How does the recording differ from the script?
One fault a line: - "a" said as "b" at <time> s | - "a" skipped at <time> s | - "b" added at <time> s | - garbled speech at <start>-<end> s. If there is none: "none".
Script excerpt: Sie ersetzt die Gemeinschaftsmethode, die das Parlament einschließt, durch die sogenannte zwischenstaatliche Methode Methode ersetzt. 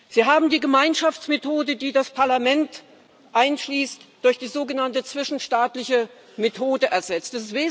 - "ersetzt" said as "haben" at 0.2 s
- "Methode" skipped at 6.9 s